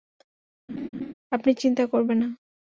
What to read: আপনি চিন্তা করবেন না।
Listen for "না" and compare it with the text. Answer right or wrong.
right